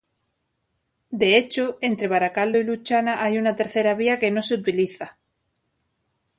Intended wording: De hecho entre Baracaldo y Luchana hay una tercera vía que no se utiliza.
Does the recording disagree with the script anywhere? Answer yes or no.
no